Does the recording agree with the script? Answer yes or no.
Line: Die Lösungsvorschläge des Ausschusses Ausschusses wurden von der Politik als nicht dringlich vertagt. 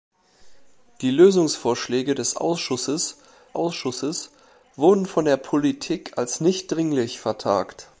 yes